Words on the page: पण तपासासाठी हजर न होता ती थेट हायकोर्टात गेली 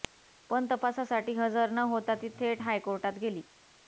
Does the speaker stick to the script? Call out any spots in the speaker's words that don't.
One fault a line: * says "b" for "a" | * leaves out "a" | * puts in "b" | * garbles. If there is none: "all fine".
all fine